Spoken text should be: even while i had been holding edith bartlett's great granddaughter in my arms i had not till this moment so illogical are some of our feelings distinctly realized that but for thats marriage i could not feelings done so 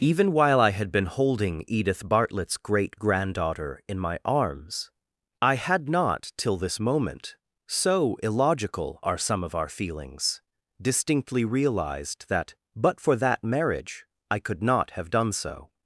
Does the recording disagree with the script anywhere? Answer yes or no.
yes